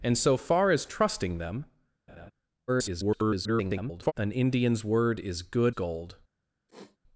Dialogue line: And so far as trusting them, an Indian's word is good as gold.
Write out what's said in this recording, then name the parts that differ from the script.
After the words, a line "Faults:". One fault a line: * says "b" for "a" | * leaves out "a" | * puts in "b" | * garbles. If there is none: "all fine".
And so far as trusting them, [garbled] an Indian's word is good gold.
Faults:
* garbles
* leaves out "as"